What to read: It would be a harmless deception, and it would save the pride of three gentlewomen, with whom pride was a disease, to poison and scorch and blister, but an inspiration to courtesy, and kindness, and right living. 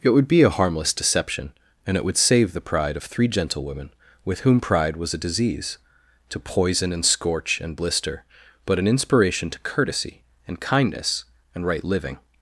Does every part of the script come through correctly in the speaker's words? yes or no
yes